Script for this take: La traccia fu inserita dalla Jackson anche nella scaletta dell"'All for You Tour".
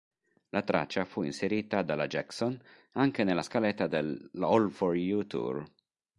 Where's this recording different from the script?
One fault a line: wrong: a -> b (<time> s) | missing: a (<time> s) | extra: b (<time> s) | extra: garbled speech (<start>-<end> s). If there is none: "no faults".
no faults